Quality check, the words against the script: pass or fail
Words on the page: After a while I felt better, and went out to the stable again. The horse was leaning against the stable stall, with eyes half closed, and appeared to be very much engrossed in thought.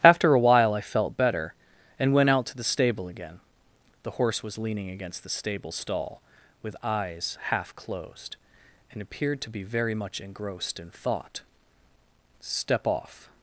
fail